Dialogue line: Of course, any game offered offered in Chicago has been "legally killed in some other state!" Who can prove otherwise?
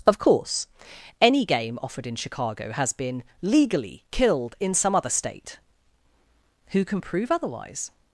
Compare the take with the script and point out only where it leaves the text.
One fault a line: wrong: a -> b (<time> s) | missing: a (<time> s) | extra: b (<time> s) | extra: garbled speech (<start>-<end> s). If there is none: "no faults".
missing: offered (2.1 s)